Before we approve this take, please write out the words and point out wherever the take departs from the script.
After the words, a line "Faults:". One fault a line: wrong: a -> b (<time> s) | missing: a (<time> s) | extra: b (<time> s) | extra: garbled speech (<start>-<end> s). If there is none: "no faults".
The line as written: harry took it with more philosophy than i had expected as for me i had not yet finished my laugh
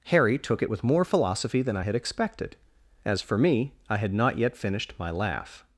harry took it with more philosophy than i had expected as for me i had not yet finished my laugh
Faults:
no faults